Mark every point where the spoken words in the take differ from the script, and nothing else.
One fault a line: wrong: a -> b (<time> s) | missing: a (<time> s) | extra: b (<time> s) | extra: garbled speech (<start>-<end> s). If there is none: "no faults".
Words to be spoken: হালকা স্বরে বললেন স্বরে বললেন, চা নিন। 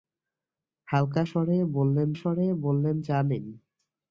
no faults